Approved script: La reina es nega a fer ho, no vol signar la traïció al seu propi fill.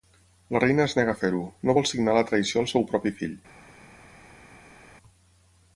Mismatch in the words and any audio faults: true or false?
false